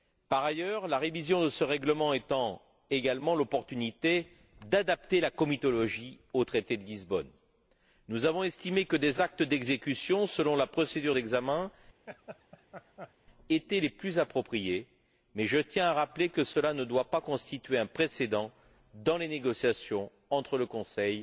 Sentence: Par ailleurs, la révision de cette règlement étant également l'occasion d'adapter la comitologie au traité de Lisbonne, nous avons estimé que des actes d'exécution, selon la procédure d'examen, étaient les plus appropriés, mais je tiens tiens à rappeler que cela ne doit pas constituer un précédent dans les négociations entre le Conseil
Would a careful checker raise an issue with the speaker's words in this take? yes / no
yes